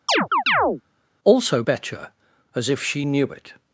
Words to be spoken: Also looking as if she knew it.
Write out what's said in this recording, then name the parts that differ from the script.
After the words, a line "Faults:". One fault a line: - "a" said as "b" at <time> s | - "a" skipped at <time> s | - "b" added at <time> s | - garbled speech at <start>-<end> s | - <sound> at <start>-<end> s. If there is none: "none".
Also betcher as if she knew it.
Faults:
- chirp at 0.1-0.8 s
- "looking" said as "betcher" at 1.6 s